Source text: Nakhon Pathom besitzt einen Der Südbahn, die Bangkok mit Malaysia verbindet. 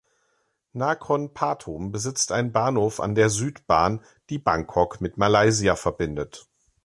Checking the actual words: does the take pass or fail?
fail